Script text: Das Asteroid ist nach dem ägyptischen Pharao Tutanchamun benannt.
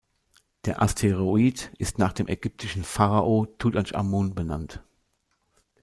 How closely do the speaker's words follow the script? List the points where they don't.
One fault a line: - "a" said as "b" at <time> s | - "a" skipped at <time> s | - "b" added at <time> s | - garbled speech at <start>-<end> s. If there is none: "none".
- "Das" said as "Der" at 0.7 s